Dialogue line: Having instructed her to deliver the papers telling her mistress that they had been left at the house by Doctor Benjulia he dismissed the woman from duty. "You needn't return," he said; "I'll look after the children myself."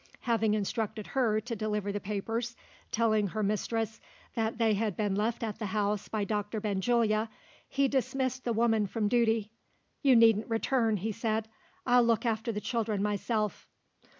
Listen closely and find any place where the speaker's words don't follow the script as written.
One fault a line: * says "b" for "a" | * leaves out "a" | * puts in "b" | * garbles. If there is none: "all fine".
all fine